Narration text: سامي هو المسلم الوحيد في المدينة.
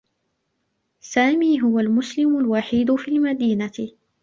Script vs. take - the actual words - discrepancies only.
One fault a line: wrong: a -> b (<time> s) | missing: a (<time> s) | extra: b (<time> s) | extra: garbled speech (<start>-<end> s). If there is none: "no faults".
no faults